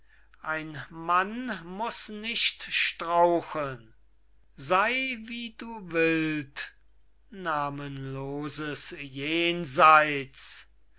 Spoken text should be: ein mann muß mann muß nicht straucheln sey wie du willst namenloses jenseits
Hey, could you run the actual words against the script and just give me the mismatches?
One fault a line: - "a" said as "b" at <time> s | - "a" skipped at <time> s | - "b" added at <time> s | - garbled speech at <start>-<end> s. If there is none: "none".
- "mann muß" skipped at 2.1 s